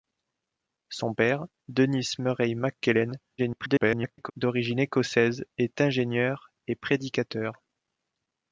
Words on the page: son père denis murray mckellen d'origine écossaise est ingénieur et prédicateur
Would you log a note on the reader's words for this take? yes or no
yes